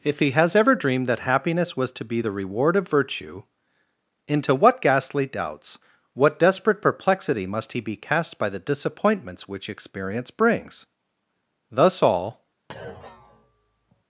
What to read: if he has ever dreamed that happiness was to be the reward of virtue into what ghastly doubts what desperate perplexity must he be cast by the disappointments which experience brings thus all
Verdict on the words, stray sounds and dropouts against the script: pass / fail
fail